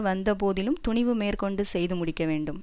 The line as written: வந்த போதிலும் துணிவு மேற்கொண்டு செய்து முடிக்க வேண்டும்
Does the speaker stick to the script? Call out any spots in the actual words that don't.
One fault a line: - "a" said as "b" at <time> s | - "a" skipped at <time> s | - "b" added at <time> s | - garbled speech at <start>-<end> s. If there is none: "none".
none